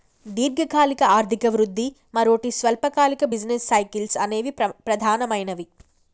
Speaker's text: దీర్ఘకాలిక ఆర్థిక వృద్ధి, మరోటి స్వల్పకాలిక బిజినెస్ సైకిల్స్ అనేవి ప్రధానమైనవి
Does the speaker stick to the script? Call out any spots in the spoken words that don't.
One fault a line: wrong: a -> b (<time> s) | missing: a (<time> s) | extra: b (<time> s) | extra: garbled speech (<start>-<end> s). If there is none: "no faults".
no faults